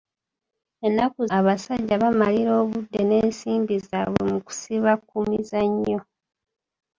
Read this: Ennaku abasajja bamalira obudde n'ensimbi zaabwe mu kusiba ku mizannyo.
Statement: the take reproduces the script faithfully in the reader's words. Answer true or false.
true